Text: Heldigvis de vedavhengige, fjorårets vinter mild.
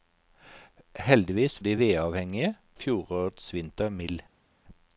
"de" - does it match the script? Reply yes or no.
yes